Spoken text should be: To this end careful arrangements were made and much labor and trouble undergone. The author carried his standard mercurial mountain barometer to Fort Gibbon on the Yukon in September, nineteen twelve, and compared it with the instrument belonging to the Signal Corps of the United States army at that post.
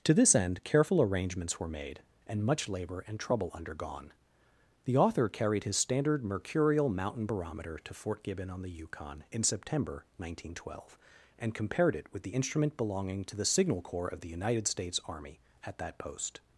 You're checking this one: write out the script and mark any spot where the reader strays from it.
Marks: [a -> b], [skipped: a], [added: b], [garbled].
To this end careful arrangements were made and much labor and trouble undergone. The author carried his standard mercurial mountain barometer to Fort Gibbon on the Yukon in September, nineteen twelve, and compared it with the instrument belonging to the Signal Corps of the United States army at that post.